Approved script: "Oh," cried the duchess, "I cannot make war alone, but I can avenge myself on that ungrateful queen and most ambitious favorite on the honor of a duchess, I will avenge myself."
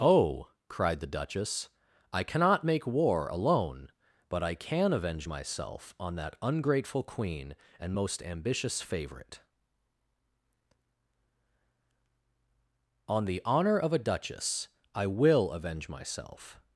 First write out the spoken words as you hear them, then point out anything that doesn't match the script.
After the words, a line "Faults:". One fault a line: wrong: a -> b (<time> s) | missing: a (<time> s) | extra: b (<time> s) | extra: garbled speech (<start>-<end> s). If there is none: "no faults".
"Oh," cried the duchess, "I cannot make war alone, but I can avenge myself on that ungrateful queen and most ambitious favorite on the honor of a duchess, I will avenge myself."
Faults:
no faults